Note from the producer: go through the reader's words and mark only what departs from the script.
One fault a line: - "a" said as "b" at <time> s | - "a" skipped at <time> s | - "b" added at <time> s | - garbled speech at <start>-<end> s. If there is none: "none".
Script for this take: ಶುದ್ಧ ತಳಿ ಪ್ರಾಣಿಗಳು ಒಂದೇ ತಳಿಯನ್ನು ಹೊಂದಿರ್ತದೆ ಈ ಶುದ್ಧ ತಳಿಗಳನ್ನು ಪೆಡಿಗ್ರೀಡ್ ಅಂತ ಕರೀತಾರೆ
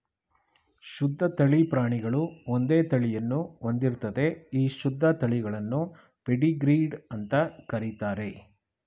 none